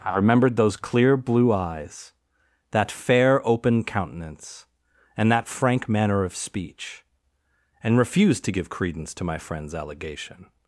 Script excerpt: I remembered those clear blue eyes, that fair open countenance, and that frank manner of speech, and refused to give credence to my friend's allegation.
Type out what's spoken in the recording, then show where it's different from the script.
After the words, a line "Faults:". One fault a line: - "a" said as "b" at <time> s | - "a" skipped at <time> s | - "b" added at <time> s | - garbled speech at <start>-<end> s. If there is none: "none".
I remembered those clear blue eyes, that fair open countenance, and that frank manner of speech, and refused to give credence to my friend's allegation.
Faults:
none